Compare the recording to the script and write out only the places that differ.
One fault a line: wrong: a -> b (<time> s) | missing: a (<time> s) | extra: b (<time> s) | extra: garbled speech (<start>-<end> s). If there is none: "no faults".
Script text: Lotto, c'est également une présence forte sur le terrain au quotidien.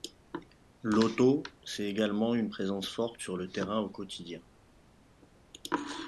no faults